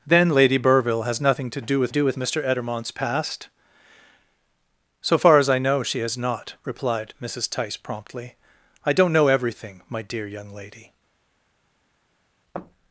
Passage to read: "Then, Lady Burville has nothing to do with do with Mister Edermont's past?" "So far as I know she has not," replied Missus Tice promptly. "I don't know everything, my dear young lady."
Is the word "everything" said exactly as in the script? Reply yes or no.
yes